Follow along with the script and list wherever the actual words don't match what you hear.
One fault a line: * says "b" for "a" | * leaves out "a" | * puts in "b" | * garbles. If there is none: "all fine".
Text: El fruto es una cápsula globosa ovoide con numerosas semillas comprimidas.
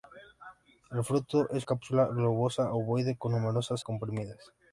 * leaves out "una"
* leaves out "semillas"